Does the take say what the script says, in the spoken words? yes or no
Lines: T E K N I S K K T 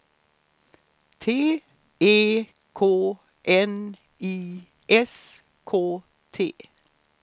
no